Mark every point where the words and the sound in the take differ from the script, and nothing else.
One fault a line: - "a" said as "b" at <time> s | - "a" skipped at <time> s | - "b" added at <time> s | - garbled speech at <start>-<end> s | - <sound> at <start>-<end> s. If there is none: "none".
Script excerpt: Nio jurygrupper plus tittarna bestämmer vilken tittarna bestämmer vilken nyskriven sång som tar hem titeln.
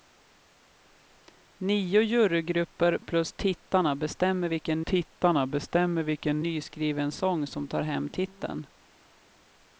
none